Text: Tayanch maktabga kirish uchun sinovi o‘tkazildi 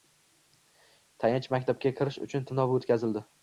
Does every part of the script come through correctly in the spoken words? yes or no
yes